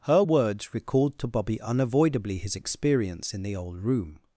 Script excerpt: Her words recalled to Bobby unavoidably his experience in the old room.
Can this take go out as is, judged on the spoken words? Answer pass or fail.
pass